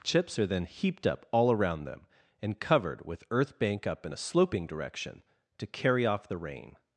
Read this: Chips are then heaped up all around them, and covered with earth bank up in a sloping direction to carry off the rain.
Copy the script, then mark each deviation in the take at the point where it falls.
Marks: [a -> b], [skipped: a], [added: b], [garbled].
Chips are then heaped up all around them, and covered with earth bank up in a sloping direction to carry off the rain.